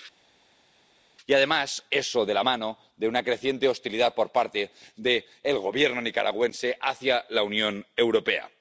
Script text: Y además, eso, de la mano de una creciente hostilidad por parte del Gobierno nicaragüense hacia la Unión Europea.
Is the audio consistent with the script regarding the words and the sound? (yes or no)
yes